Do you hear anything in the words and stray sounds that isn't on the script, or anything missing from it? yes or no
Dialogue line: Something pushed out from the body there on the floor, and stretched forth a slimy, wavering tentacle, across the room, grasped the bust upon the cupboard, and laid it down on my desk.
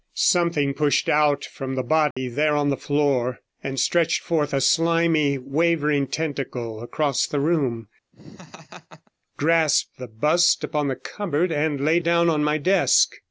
yes